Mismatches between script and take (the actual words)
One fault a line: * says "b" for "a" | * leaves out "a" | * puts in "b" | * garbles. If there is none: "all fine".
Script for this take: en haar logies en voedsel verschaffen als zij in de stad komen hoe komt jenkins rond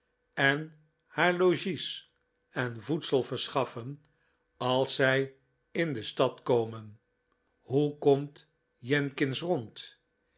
all fine